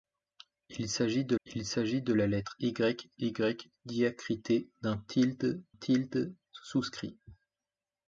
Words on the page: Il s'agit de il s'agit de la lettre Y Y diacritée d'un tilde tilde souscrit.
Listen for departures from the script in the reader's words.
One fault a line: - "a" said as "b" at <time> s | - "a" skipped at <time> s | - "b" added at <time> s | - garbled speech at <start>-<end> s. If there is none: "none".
none